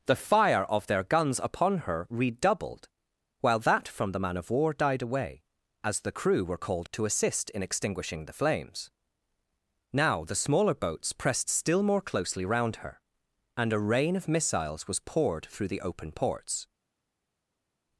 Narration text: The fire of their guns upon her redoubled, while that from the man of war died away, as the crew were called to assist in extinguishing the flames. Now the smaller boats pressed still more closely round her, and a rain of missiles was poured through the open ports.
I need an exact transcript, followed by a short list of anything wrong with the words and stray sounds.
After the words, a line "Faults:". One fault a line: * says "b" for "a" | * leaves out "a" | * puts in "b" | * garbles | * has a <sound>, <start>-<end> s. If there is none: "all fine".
The fire of their guns upon her redoubled, while that from the man of war died away, as the crew were called to assist in extinguishing the flames. Now the smaller boats pressed still more closely round her, and a rain of missiles was poured through the open ports.
Faults:
all fine